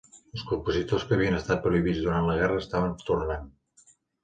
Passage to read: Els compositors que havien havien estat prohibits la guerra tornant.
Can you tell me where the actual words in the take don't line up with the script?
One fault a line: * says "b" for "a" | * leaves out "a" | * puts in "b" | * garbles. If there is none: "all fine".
* leaves out "havien"
* puts in "durant"
* puts in "estaven"